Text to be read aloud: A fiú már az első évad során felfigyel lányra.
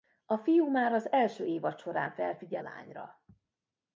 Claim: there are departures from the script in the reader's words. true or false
false